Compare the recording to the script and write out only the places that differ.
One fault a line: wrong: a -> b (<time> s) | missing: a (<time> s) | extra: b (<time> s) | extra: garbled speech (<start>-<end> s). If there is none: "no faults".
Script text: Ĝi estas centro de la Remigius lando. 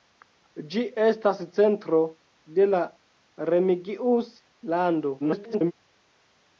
extra: garbled speech (5.2-5.7 s)